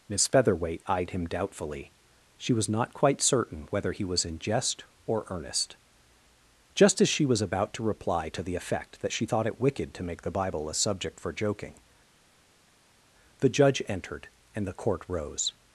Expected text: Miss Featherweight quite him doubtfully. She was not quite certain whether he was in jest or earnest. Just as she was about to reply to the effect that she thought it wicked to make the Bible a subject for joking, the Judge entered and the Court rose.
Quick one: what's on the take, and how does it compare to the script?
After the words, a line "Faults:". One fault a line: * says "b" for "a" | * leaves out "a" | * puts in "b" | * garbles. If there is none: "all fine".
Miss Featherweight eyed him doubtfully. She was not quite certain whether he was in jest or earnest. Just as she was about to reply to the effect that she thought it wicked to make the Bible a subject for joking, the Judge entered and the Court rose.
Faults:
* says "eyed" for "quite"